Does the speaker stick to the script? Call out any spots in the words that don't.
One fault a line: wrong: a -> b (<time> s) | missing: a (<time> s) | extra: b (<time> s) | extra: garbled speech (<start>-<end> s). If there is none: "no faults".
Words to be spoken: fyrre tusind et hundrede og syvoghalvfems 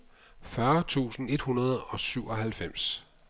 no faults